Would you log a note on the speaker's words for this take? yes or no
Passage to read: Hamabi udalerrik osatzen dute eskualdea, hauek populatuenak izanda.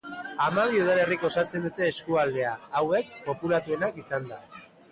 no